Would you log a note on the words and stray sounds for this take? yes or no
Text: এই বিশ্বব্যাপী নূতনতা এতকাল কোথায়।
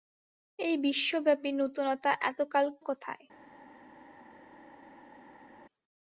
no